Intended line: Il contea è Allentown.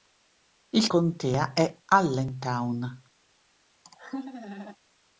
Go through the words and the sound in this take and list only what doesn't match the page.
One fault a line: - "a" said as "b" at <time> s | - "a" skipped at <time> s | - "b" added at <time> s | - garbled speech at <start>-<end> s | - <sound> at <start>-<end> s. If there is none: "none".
- laugh at 3.8-4.8 s